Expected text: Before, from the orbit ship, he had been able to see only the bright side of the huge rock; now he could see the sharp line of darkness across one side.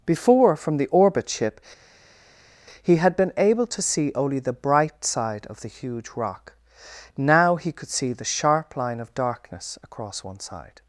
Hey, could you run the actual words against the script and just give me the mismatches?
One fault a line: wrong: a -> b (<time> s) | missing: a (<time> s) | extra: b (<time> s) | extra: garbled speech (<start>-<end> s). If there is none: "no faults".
no faults